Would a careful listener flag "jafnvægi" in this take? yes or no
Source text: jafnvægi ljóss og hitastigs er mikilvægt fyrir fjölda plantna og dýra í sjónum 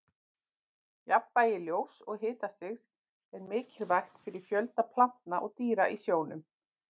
no